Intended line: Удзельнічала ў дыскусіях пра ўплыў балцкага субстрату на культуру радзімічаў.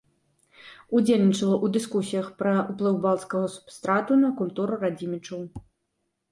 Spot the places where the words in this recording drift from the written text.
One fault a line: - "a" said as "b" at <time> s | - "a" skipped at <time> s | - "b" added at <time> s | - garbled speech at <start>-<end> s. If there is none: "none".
none